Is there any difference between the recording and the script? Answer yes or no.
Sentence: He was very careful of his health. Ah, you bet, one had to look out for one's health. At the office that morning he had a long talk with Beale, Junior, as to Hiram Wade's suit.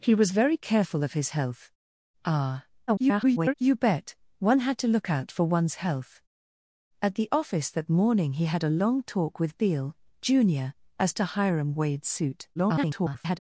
yes